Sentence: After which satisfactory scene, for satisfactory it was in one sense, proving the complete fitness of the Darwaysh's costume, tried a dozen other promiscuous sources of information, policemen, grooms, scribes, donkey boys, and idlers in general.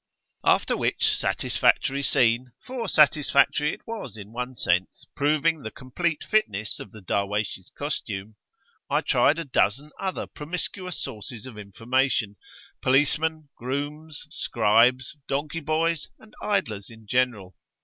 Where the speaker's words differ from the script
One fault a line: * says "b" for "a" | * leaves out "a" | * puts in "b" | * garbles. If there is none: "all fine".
* puts in "I"